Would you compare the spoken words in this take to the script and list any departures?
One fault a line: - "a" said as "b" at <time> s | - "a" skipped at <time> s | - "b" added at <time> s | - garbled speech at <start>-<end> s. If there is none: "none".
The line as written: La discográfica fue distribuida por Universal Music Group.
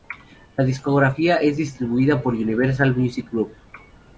- "fue" said as "es" at 1.4 s